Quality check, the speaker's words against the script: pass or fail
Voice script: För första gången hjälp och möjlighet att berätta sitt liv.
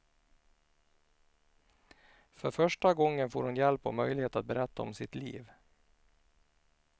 fail